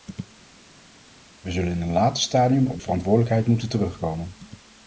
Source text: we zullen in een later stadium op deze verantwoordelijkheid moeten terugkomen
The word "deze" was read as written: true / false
false